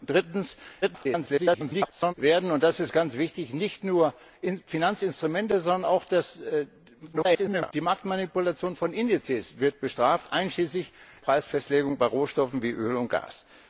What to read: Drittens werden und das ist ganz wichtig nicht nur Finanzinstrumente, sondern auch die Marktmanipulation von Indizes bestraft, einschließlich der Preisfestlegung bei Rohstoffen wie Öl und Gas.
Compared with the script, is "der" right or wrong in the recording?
wrong